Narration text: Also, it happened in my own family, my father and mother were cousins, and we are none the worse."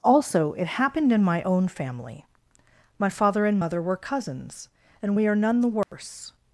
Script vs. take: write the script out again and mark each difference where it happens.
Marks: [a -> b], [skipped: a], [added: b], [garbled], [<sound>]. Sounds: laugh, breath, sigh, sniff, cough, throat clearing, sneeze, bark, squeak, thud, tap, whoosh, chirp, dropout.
Also, it happened in my own family, my father and mother were cousins, and we are none the worse." [dropout]